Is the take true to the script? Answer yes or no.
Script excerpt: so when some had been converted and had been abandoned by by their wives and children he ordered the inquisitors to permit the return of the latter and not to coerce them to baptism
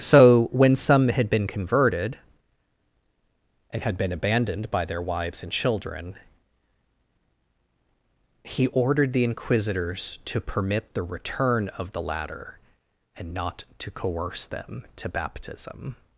no